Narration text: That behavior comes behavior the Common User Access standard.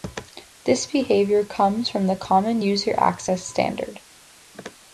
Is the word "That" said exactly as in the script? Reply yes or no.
no